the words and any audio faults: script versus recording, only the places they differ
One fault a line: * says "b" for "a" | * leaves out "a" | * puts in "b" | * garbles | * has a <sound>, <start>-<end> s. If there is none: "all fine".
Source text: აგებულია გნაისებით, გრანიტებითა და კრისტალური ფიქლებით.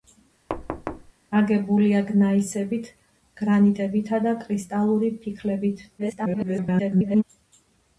* has a thud, 0.5-1.1 s
* garbles